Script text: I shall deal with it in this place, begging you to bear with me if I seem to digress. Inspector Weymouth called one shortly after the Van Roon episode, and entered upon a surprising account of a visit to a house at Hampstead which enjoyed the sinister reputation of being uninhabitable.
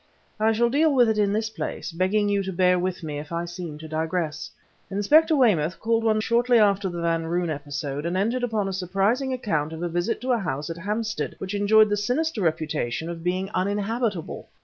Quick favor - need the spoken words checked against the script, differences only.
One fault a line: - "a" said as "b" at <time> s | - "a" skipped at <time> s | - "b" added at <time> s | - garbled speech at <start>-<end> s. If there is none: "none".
none